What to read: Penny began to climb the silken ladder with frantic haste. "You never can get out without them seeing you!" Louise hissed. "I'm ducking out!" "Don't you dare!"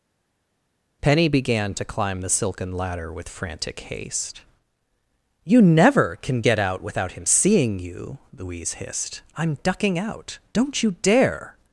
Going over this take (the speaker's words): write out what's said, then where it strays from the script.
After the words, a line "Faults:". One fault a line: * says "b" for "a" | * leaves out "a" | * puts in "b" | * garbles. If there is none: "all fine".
Penny began to climb the silken ladder with frantic haste. "You never can get out without him seeing you!" Louise hissed. "I'm ducking out!" "Don't you dare!"
Faults:
* says "him" for "them"